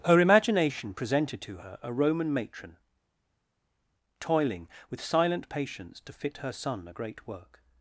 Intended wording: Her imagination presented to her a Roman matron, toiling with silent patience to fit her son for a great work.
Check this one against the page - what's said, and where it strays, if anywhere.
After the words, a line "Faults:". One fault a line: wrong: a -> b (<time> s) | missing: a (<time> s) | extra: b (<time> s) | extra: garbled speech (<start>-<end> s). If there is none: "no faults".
Her imagination presented to her a Roman matron, toiling with silent patience to fit her son a great work.
Faults:
missing: for (6.9 s)